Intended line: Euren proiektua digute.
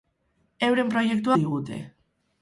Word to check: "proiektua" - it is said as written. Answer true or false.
true